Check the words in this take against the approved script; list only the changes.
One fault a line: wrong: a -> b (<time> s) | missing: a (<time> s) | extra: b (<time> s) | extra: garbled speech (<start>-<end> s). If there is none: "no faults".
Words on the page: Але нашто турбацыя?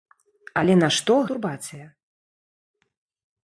no faults